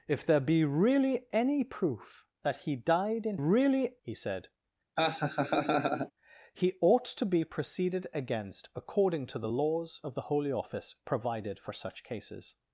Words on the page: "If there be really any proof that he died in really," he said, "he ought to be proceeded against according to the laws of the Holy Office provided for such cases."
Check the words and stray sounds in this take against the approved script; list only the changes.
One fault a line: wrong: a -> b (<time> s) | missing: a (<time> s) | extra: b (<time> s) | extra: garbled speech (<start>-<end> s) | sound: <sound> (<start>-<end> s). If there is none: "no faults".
sound: laugh (5.0-6.1 s)